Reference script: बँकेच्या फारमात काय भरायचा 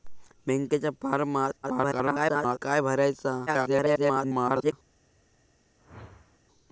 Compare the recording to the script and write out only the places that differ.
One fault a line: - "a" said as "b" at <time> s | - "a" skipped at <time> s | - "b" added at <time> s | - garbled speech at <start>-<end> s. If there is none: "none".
- garbled speech at 1.6-2.6 s
- garbled speech at 3.5-4.7 s